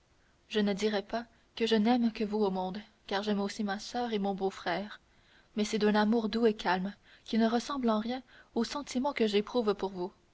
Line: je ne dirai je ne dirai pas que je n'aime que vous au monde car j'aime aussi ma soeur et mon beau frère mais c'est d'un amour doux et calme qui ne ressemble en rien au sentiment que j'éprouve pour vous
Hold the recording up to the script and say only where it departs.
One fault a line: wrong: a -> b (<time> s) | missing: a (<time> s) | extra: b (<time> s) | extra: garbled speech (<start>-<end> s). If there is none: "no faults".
missing: je ne dirai (1.0 s)